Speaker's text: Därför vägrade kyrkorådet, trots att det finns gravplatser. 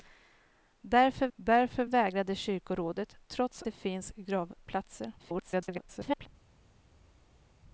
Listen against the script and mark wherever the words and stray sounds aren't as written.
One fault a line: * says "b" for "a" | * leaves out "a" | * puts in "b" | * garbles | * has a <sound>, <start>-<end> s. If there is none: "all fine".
* puts in "därför"
* leaves out "att"
* garbles